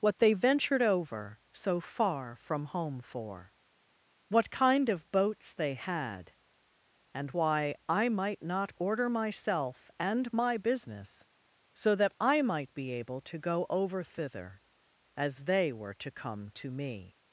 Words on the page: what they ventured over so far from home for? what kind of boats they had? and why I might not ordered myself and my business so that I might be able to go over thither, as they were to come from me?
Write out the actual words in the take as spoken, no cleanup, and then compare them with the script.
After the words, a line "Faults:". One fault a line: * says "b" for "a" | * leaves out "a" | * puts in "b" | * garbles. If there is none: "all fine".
what they ventured over so far from home for? what kind of boats they had? and why I might not order myself and my business so that I might be able to go over thither, as they were to come to me?
Faults:
* says "order" for "ordered"
* says "to" for "from"